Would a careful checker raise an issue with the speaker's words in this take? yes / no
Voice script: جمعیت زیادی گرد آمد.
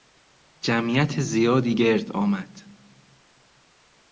no